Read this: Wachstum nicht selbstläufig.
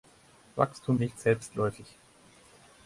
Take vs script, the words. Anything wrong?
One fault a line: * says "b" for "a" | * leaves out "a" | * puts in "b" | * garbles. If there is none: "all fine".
all fine